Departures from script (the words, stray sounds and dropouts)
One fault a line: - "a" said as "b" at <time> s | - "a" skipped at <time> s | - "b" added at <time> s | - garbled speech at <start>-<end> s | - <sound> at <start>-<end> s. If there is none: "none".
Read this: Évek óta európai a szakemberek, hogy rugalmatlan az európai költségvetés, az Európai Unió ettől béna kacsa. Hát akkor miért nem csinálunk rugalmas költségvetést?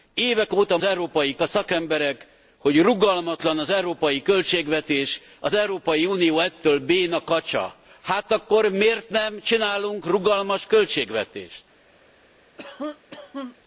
- cough at 12.6-13.6 s